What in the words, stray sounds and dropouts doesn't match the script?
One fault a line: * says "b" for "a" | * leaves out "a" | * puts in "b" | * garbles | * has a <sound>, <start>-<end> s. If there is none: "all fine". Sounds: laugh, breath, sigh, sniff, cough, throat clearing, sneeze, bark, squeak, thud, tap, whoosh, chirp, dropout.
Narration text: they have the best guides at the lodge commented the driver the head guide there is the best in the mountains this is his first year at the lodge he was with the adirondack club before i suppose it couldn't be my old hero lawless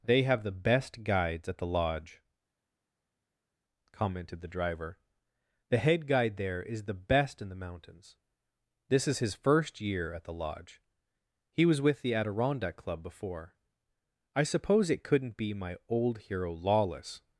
all fine